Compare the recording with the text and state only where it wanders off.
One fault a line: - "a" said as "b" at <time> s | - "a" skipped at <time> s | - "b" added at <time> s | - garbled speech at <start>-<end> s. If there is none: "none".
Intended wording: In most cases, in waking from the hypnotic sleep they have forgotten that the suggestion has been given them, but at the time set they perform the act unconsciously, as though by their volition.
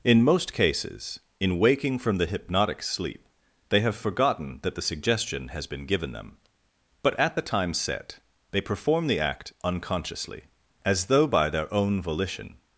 - "own" added at 11.7 s